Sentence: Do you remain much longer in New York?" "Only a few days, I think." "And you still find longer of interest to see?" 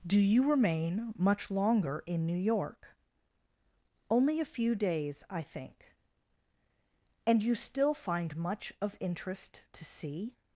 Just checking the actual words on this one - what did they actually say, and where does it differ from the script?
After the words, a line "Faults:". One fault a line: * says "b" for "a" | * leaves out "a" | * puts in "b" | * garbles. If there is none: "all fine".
Do you remain much longer in New York?" "Only a few days, I think." "And you still find much of interest to see?"
Faults:
* says "much" for "longer"